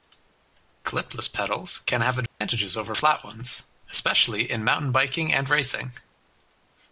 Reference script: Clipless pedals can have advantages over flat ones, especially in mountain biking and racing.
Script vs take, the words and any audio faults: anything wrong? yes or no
yes